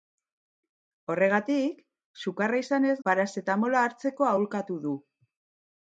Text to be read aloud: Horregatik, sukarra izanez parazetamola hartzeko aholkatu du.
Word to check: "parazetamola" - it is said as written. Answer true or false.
true